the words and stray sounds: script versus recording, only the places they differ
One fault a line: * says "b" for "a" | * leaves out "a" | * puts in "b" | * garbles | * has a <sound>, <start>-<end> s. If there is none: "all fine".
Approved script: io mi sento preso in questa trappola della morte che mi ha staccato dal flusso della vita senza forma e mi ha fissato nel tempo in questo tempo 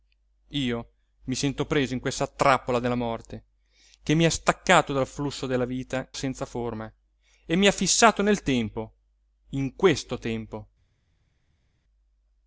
all fine